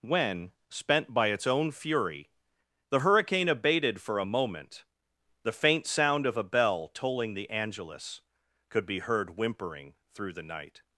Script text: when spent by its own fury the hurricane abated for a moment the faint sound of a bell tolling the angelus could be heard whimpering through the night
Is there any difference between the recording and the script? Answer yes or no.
no